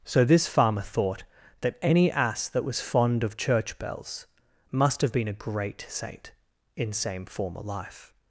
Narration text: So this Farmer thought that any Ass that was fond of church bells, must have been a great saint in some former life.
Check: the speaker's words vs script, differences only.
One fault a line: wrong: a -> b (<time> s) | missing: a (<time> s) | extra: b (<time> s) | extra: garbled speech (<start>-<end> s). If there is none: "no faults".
wrong: some -> same (6.9 s)